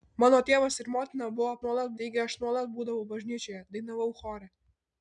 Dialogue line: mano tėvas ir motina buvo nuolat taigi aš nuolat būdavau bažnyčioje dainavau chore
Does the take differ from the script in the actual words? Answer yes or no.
no